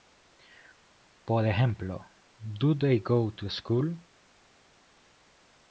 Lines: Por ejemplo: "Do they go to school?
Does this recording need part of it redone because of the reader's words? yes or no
no